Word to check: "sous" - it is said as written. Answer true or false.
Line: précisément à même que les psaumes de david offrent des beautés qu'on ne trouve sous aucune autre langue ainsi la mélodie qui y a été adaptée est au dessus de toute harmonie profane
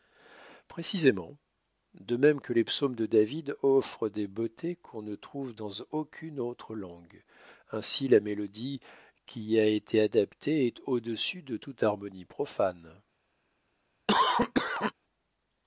false